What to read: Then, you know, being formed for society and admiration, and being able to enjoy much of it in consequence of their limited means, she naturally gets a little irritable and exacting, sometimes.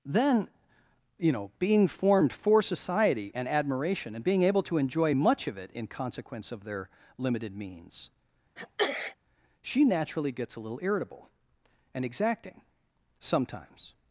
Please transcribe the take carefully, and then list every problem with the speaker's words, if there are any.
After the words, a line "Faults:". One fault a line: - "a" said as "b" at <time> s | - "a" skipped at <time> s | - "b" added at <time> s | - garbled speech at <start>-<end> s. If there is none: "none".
Then, you know, being formed for society and admiration, and being able to enjoy much of it in consequence of their limited means, she naturally gets a little irritable and exacting, sometimes.
Faults:
none